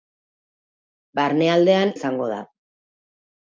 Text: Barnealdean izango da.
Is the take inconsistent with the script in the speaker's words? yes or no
no